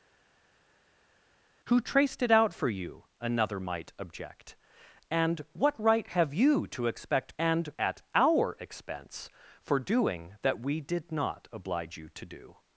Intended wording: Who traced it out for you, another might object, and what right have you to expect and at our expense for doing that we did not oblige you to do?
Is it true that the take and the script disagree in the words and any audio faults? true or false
false